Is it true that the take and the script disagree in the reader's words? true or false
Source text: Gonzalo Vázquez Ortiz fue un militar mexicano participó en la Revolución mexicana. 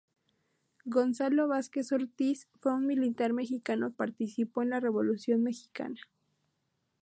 false